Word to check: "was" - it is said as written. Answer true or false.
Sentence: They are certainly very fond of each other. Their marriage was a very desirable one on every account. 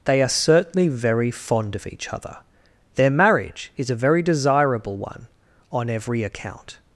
false